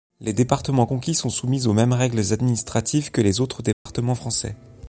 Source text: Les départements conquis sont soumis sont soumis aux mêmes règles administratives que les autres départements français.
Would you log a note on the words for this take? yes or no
yes